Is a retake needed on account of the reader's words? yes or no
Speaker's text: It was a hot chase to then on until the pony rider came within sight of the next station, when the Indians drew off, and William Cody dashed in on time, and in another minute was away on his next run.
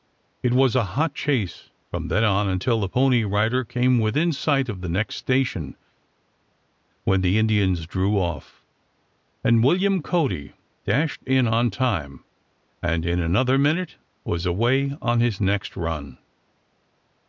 yes